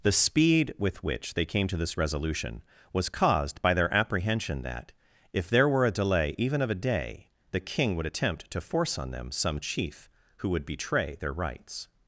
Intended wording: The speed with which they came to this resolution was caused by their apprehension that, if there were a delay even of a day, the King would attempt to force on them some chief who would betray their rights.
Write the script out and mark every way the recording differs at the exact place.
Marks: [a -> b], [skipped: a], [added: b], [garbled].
The speed with which they came to this resolution was caused by their apprehension that, if there were a delay even of a day, the King would attempt to force on them some chief who would betray their rights.